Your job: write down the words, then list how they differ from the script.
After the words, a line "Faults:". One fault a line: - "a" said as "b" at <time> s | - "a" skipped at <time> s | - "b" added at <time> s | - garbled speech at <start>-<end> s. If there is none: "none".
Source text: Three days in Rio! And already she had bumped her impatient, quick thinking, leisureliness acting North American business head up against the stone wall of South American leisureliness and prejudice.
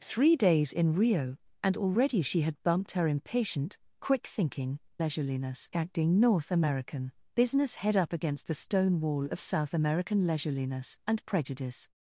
Three days in Rio! And already she had bumped her impatient, quick thinking, leisureliness acting North American business head up against the stone wall of South American leisureliness and prejudice.
Faults:
none